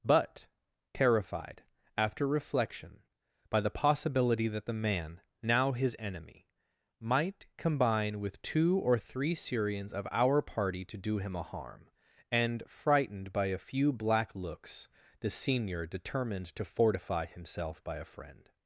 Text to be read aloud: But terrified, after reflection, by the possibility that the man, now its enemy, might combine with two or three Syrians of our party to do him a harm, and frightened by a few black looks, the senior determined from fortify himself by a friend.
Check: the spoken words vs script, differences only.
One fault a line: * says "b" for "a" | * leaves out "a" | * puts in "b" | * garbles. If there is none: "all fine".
* says "his" for "its"
* says "to" for "from"